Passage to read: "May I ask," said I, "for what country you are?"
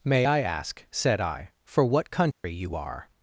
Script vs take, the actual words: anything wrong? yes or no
no